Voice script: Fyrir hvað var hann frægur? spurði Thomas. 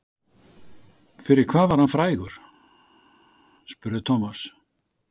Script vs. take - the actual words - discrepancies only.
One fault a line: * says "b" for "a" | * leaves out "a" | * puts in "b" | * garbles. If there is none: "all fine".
all fine